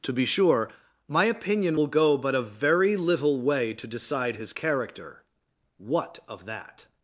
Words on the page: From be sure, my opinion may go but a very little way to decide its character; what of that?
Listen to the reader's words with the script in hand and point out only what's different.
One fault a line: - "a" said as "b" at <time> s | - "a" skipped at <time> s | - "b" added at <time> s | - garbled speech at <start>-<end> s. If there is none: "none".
- "From" said as "To" at 0.0 s
- "may" said as "will" at 1.7 s
- "its" said as "his" at 4.4 s